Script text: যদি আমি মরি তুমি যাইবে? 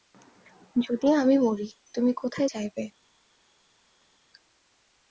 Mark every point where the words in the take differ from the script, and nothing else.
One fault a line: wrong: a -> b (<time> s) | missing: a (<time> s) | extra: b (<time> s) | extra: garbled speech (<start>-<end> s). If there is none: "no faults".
extra: কোথায় (2.1 s)